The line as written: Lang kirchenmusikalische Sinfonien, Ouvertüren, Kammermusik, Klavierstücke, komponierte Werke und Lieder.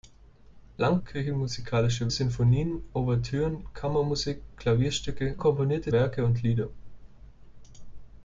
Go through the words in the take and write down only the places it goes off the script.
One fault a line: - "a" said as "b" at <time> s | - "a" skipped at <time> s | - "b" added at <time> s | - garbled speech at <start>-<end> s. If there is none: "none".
none